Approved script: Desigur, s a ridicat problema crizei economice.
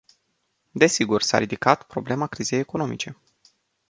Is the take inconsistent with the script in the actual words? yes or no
no